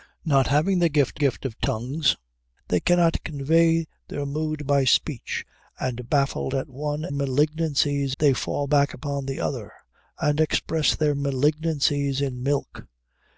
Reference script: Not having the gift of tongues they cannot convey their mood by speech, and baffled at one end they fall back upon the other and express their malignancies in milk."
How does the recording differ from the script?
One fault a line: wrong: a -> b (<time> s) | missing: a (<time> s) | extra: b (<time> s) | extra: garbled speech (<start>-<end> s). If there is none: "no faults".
extra: gift (1.1 s)
wrong: end -> malignancies (7.1 s)